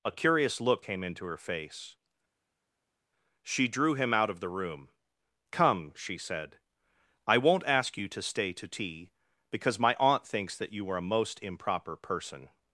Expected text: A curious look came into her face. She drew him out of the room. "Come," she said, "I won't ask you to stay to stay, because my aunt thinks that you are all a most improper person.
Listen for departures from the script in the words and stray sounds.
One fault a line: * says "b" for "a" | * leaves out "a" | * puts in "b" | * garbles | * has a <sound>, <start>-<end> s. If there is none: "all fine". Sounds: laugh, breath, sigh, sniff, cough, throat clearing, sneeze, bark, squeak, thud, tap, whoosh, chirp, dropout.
* says "tea" for "stay"
* leaves out "all"